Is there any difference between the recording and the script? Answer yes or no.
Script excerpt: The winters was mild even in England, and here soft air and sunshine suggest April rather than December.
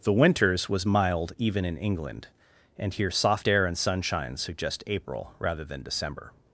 no